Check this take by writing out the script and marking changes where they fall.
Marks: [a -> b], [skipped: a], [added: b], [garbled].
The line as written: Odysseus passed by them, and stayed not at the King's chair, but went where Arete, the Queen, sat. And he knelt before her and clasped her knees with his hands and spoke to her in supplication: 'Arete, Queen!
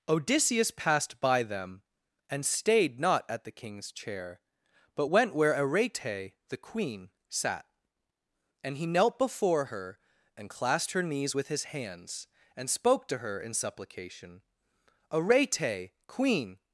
Odysseus passed by them, and stayed not at the King's chair, but went where Arete, the Queen, sat. And he knelt before her and clasped her knees with his hands and spoke to her in supplication: 'Arete, Queen!